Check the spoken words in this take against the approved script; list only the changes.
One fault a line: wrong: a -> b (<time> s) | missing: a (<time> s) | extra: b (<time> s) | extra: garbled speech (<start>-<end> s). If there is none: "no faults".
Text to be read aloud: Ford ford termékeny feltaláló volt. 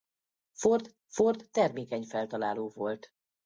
no faults